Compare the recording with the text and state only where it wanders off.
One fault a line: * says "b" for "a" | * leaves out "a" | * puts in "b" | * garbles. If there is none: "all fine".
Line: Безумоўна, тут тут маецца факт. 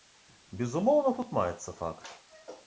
* leaves out "тут"